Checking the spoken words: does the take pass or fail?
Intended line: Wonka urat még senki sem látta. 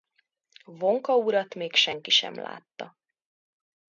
pass